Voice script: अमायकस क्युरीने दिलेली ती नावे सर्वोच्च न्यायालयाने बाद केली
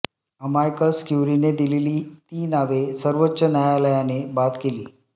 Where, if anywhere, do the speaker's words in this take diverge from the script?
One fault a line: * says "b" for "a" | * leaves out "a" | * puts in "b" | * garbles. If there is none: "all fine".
all fine